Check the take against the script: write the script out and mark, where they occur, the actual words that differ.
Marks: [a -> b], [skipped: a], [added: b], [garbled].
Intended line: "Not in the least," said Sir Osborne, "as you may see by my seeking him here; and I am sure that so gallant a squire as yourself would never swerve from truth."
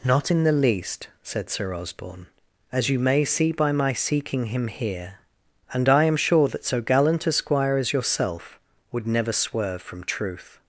"Not in the least," said Sir Osborne, "as you may see by my seeking him here; and I am sure that so gallant a squire as yourself would never swerve from truth."